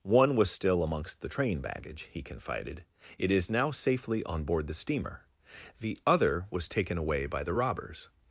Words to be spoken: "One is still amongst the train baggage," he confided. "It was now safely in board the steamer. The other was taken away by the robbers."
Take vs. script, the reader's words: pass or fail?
fail